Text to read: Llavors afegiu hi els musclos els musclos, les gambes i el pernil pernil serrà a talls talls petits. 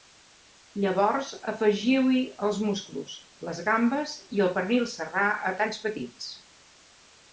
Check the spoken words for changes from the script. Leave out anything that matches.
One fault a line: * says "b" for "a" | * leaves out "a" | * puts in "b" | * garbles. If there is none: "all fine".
* leaves out "els musclos"
* leaves out "pernil"
* leaves out "talls"